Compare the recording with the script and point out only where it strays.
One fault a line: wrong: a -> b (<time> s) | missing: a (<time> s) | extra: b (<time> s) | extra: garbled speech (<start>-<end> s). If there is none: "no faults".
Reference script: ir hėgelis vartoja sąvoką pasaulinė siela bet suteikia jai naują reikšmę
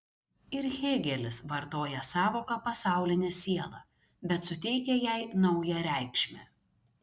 no faults